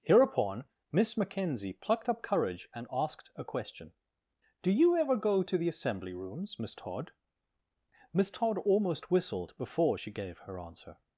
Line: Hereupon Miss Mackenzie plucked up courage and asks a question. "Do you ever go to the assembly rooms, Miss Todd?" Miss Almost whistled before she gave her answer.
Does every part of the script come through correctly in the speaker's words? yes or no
no